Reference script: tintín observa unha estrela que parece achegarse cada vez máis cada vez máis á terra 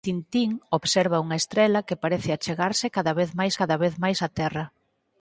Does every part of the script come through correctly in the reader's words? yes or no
yes